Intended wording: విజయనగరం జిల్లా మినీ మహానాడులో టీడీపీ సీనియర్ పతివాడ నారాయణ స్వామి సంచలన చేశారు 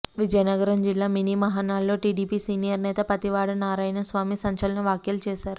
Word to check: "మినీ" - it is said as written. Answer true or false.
true